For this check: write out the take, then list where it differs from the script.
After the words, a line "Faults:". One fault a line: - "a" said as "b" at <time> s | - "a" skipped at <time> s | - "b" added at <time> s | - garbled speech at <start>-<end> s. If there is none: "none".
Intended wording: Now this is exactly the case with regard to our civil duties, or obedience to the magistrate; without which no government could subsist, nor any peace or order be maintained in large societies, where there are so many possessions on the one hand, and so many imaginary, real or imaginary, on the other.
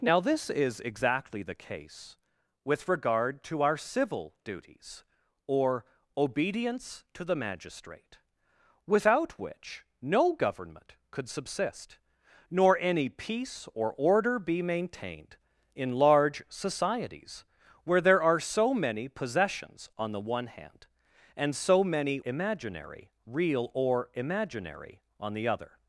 Now this is exactly the case with regard to our civil duties, or obedience to the magistrate; without which no government could subsist, nor any peace or order be maintained in large societies, where there are so many possessions on the one hand, and so many imaginary, real or imaginary, on the other.
Faults:
none